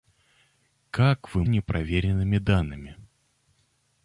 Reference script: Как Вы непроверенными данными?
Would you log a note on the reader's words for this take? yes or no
no